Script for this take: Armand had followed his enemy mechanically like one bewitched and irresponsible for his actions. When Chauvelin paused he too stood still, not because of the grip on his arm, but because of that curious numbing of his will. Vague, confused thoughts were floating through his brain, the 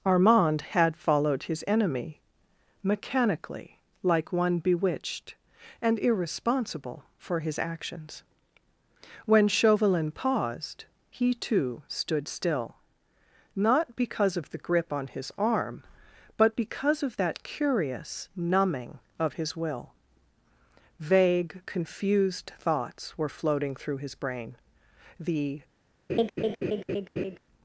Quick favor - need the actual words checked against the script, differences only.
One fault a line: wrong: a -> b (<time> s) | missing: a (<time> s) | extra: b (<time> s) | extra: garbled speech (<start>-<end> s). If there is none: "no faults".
no faults